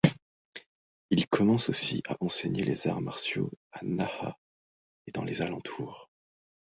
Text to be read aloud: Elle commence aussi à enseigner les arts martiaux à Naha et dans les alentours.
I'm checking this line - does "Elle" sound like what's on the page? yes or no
no